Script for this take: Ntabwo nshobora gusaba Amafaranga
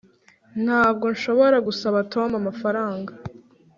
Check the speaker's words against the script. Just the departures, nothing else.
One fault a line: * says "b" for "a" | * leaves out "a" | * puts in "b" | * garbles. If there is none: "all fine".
* puts in "Tom"